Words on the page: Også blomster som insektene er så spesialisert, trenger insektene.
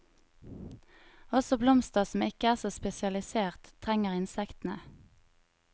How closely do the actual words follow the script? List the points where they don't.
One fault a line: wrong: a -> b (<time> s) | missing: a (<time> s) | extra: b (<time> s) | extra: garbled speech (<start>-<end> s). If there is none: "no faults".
wrong: insektene -> ikke (2.2 s)